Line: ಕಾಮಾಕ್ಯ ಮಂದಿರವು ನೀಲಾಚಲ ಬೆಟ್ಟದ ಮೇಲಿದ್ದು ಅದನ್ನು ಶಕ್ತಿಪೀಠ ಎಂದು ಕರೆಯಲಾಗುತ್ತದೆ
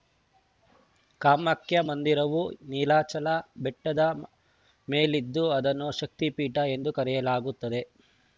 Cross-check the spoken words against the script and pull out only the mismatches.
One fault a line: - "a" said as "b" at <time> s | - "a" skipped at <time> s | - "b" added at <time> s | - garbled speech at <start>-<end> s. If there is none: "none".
none